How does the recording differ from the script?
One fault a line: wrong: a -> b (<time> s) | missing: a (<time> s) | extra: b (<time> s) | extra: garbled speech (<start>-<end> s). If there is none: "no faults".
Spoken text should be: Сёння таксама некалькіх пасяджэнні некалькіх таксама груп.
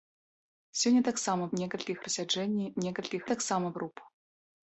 no faults